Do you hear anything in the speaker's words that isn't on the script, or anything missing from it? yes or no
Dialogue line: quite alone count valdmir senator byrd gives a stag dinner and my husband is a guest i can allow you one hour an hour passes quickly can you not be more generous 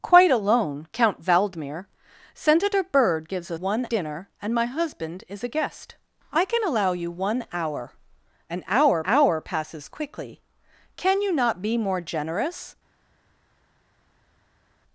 yes